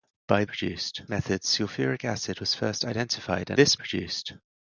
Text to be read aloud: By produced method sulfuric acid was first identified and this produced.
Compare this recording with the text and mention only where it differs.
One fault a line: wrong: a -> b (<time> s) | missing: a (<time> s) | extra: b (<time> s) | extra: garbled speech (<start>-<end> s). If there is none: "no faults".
no faults